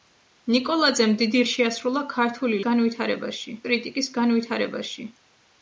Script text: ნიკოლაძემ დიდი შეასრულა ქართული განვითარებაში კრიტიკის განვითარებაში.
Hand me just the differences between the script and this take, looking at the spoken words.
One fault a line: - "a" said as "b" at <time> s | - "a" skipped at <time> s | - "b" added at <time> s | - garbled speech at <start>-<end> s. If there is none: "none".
none